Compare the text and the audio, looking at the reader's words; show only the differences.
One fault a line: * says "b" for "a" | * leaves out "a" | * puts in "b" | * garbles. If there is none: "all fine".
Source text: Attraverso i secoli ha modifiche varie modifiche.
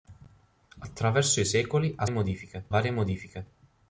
all fine